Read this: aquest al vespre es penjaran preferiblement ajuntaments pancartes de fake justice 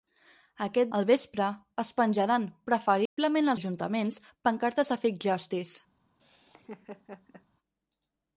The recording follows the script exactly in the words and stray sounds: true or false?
false